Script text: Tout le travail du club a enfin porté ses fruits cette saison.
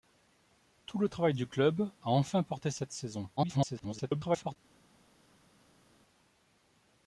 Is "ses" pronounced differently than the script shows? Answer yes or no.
yes